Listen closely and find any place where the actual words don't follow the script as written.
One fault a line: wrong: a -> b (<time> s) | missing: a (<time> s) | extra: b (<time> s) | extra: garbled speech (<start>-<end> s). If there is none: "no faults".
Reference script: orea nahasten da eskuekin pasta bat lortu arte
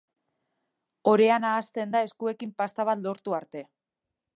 no faults